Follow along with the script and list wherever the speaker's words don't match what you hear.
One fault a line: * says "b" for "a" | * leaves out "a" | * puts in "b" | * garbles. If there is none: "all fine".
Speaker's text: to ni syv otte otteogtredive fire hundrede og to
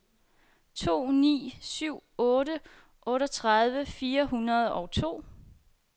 all fine